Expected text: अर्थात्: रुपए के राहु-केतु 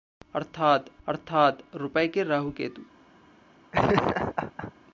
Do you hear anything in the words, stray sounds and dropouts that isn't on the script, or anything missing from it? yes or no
yes